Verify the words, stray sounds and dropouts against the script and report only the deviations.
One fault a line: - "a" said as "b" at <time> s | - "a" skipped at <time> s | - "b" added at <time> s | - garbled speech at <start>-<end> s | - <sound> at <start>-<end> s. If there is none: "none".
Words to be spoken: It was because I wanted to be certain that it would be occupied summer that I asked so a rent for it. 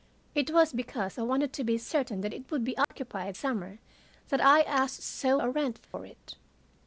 - dropout at 2.8-2.9 s
- dropout at 5.8-5.9 s